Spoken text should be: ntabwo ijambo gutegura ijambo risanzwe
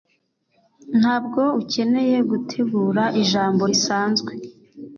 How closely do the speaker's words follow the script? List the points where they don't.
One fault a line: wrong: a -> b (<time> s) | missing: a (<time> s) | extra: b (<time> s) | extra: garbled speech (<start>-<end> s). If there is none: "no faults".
wrong: ijambo -> ukeneye (1.6 s)